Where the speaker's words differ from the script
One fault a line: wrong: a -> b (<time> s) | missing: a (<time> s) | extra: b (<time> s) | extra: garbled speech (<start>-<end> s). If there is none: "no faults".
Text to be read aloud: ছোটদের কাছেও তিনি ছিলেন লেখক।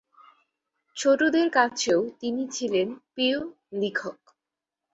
extra: প্রিয় (3.1 s)